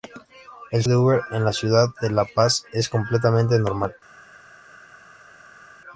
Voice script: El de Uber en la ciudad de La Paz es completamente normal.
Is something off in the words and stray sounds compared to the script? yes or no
no